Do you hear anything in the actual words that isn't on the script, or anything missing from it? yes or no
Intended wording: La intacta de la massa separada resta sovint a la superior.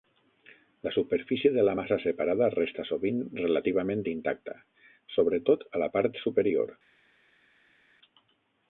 yes